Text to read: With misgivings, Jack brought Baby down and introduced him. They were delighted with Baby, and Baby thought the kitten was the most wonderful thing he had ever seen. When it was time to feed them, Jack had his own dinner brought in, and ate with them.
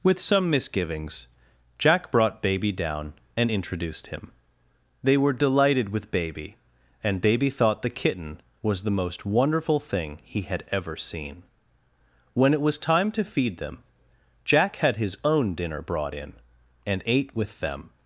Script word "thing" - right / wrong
right